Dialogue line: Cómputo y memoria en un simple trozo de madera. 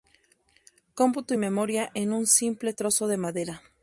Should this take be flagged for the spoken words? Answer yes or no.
no